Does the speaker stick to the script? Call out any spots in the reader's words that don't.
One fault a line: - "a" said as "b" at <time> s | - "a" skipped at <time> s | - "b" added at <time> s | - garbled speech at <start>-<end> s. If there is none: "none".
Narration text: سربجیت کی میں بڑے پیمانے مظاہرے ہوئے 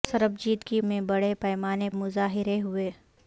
none